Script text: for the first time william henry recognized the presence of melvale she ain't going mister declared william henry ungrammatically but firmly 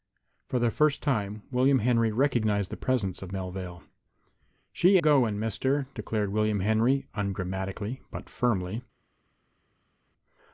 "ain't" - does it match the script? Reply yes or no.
no